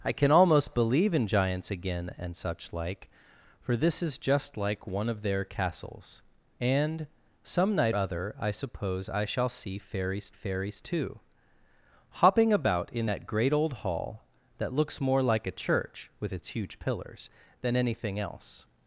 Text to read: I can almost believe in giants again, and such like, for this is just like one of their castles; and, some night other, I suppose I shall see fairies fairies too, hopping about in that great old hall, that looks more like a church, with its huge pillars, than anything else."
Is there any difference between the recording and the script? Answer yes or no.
no